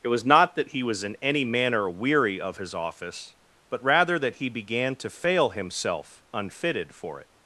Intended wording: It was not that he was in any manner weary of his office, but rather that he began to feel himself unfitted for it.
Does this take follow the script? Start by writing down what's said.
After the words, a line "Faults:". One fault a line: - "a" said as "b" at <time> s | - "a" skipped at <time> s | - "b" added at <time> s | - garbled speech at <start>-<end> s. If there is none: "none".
It was not that he was in any manner weary of his office, but rather that he began to fail himself unfitted for it.
Faults:
- "feel" said as "fail" at 5.1 s